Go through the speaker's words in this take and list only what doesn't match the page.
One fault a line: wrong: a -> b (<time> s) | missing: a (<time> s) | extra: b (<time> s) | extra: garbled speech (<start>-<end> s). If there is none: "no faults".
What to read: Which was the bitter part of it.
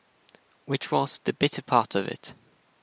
no faults